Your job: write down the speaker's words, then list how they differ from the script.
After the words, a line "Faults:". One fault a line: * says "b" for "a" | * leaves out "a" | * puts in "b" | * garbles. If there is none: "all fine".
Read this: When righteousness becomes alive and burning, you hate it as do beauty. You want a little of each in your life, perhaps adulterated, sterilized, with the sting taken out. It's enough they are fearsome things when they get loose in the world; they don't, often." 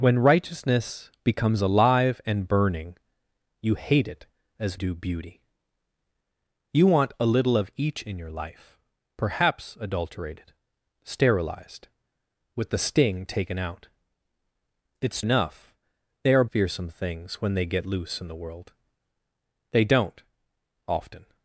When righteousness becomes alive and burning, you hate it as do beauty. You want a little of each in your life, perhaps adulterated, sterilized, with the sting taken out. It's enough they are fearsome things when they get loose in the world; they don't, often."
Faults:
all fine